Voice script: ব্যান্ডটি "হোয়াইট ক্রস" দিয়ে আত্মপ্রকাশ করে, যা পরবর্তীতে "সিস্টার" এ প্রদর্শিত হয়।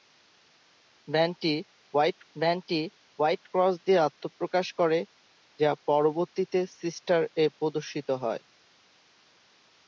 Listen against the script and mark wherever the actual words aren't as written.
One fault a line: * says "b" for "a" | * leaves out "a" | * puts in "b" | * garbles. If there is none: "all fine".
* puts in "ব্যান্ডটি হোয়াইট"